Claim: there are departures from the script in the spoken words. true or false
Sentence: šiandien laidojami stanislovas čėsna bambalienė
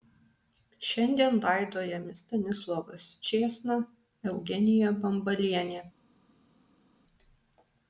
true